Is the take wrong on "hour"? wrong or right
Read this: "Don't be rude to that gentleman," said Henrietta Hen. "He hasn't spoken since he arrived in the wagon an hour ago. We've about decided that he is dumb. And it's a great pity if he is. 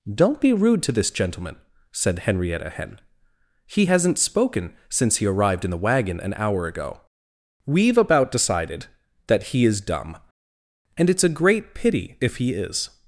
right